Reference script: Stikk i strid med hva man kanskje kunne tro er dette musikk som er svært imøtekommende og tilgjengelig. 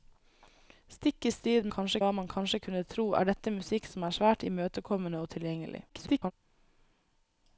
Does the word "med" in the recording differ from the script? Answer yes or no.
yes